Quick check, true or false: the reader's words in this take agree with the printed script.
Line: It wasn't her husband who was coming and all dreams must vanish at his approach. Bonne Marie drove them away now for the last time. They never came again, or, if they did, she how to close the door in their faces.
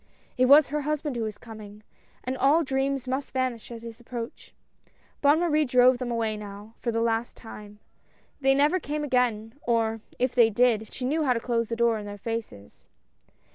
false